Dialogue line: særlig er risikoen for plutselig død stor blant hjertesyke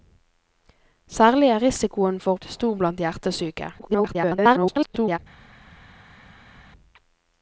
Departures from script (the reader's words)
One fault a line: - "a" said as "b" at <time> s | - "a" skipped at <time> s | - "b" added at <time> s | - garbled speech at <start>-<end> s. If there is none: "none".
- "plutselig død" skipped at 2.4 s
- garbled speech at 3.8-5.2 s